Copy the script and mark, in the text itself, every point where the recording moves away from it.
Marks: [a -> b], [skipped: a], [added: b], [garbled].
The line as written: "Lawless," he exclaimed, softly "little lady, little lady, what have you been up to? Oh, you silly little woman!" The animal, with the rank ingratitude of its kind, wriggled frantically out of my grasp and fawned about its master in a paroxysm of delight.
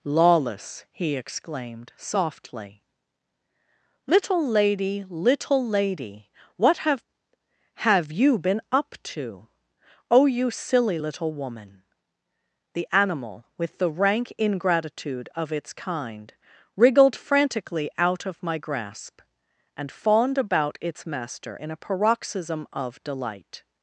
"Lawless," he exclaimed, softly "little lady, little lady, what have [added: have] you been up to? Oh, you silly little woman!" The animal, with the rank ingratitude of its kind, wriggled frantically out of my grasp and fawned about its master in a paroxysm of delight.